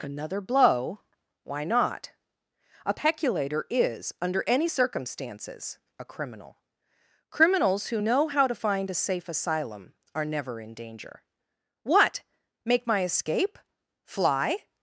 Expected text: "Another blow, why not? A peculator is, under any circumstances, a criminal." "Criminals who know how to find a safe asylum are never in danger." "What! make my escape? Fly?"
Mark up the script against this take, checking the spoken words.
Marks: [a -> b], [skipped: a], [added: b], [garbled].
"Another blow, why not? A peculator is, under any circumstances, a criminal." "Criminals who know how to find a safe asylum are never in danger." "What! make my escape? Fly?"